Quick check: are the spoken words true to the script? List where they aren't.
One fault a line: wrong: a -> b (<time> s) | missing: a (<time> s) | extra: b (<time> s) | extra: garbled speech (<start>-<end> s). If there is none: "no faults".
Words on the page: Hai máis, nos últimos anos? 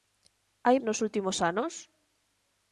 missing: máis (0.8 s)